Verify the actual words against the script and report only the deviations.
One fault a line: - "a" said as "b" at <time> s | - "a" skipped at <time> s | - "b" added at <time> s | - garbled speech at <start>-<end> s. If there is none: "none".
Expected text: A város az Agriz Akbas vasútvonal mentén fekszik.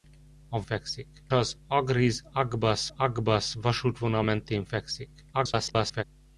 - "város" said as "fekszik" at 0.6 s
- "Akbas" added at 3.0 s
- garbled speech at 5.3-6.0 s